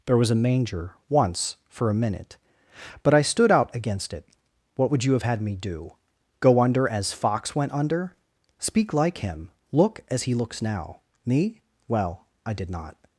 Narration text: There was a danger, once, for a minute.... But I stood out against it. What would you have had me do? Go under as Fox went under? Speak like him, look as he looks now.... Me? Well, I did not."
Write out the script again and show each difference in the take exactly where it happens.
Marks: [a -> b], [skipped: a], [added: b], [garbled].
There was a [danger, -> manger] once, for a minute.... But I stood out against it. What would you have had me do? Go under as Fox went under? Speak like him, look as he looks now.... Me? Well, I did not."